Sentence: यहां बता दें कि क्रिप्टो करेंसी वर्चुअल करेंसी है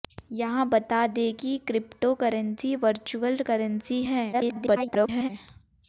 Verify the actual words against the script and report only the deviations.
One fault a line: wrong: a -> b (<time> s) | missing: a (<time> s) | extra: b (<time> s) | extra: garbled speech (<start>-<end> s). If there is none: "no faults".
extra: garbled speech (4.3-5.3 s)